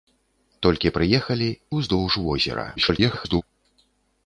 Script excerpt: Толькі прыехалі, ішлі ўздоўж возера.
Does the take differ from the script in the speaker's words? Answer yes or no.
yes